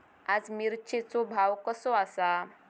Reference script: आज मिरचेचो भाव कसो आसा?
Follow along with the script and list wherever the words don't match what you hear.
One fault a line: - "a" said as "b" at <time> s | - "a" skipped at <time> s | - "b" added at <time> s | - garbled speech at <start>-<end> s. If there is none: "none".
none